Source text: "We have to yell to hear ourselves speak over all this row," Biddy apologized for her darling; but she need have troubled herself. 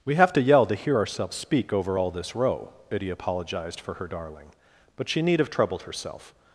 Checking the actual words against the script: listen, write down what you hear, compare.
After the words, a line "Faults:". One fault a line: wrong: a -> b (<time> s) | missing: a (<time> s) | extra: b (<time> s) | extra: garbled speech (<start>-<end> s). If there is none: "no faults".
"We have to yell to hear ourselves speak over all this row," Biddy apologized for her darling; but she need have troubled herself.
Faults:
no faults